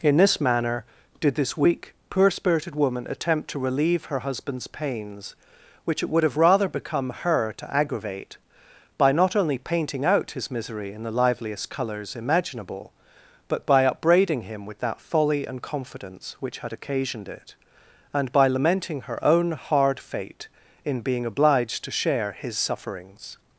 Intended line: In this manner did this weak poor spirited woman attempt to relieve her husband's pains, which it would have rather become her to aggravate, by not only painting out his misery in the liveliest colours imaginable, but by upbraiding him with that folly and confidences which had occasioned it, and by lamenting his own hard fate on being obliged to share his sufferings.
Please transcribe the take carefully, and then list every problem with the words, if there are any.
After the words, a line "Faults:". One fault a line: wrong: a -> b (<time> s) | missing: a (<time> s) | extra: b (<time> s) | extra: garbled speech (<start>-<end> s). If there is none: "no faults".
In this manner did this weak poor spirited woman attempt to relieve her husband's pains, which it would have rather become her to aggravate, by not only painting out his misery in the liveliest colours imaginable, but by upbraiding him with that folly and confidence which had occasioned it, and by lamenting her own hard fate in being obliged to share his sufferings.
Faults:
wrong: confidences -> confidence (15.6 s)
wrong: his -> her (19.0 s)
wrong: on -> in (20.9 s)